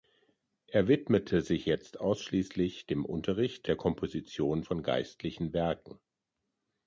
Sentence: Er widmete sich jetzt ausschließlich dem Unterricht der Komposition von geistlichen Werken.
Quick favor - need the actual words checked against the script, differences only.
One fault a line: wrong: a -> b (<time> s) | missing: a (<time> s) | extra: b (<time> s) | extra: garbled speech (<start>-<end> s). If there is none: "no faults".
no faults